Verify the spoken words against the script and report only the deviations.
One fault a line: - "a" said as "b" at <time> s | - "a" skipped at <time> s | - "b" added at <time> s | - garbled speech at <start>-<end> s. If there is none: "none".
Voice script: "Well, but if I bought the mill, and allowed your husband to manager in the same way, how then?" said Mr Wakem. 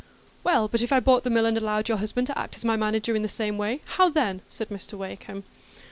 - "act as my" added at 2.4 s